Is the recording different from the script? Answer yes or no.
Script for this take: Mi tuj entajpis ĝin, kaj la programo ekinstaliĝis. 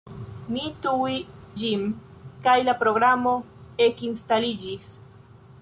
yes